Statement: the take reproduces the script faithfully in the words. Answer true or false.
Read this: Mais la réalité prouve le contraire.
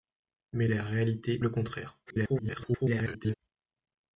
false